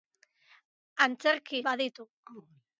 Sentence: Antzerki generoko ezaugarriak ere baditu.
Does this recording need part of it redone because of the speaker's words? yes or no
yes